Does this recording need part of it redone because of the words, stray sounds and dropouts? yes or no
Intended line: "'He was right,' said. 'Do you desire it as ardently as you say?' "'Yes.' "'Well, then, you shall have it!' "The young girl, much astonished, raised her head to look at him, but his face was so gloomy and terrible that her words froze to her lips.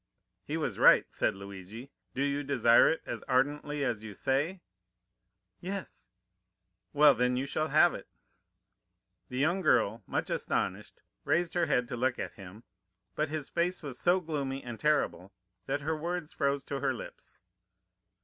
yes